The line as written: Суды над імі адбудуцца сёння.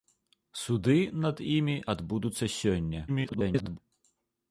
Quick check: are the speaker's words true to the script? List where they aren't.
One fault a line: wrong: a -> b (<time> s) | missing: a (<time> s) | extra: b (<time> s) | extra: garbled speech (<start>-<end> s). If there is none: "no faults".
extra: garbled speech (3.1-3.8 s)